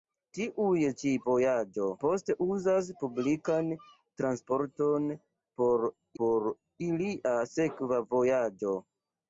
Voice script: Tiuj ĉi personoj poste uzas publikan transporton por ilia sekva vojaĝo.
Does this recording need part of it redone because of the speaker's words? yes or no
yes